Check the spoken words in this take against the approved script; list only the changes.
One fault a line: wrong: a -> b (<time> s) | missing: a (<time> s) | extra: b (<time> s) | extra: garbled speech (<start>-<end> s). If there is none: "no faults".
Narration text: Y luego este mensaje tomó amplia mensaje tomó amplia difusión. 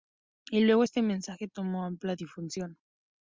missing: mensaje tomó amplia (2.2 s)